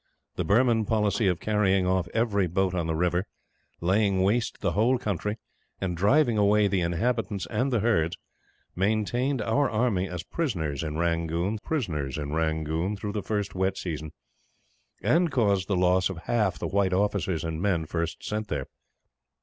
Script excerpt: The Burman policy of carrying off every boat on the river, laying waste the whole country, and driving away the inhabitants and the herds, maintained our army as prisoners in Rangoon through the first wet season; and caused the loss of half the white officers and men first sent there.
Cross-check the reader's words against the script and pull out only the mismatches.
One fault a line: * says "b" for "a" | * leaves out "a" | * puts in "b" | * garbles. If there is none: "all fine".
* puts in "prisoners in Rangoon"